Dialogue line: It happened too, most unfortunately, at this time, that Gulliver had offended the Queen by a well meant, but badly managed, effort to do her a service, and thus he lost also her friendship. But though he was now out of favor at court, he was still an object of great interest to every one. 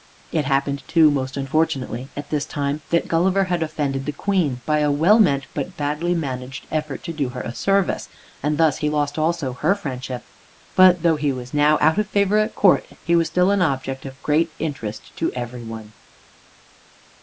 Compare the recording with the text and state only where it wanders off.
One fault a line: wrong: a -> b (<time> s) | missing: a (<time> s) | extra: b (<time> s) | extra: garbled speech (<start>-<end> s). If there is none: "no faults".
no faults